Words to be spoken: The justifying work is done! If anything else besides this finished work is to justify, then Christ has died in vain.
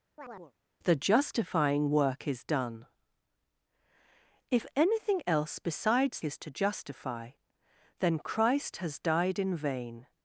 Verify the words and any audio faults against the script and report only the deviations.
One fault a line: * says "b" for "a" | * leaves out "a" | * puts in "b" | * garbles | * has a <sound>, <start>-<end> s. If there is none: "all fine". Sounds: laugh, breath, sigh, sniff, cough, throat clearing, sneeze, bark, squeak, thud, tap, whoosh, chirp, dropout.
* has a chirp, 0.2-0.5 s
* leaves out "this finished work"